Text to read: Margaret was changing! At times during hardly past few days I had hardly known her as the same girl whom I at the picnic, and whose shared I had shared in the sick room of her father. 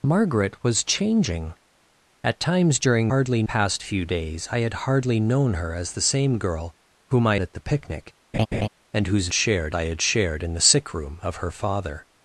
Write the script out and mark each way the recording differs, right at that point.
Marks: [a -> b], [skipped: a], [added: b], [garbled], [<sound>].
Margaret was changing! At times during hardly past few days I had hardly known her as the same girl whom I at the picnic, [laugh] and whose shared I had shared in the sick room of her father.